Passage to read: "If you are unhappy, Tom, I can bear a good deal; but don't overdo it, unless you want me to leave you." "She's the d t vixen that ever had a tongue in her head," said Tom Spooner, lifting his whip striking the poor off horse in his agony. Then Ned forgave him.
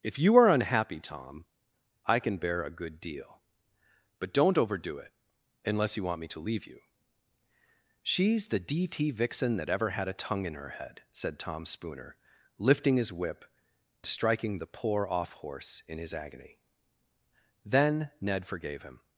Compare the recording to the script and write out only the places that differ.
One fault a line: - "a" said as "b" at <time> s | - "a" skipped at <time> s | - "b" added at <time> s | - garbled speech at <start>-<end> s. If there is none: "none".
none